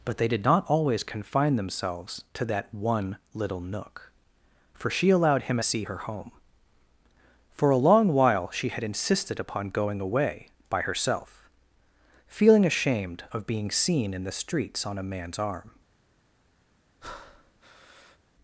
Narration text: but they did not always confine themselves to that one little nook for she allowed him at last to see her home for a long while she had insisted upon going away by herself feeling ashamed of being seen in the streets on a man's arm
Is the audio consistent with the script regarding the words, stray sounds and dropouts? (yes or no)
no